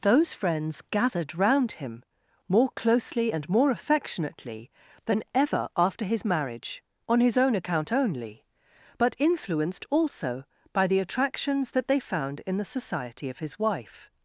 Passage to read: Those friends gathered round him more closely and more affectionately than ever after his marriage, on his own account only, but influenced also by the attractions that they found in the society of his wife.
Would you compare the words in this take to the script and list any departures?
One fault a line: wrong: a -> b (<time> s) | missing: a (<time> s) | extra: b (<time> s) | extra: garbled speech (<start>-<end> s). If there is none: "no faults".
no faults